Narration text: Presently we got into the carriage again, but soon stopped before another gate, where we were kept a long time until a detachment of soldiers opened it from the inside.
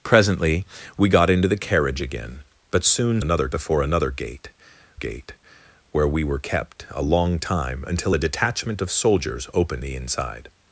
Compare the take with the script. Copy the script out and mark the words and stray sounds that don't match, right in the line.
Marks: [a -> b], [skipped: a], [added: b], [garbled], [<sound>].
Presently we got into the carriage again, but soon [stopped -> another] before another gate, [added: gate] where we were kept a long time until a detachment of soldiers opened [skipped: it from] the inside.